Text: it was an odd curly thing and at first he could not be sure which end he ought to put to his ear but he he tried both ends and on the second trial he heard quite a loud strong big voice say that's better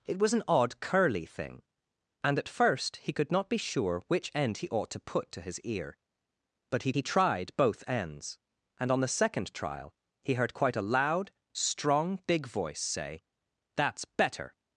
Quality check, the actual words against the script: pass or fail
pass